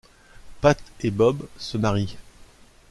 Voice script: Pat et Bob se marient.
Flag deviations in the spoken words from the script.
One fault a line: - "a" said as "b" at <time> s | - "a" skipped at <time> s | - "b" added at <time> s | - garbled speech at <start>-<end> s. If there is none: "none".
none